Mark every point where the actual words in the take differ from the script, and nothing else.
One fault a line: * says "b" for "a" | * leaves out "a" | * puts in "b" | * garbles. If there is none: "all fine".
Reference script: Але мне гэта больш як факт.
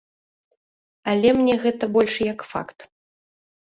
all fine